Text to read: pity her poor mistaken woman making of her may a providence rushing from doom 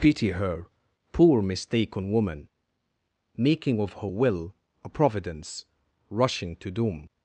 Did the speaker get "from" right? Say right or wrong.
wrong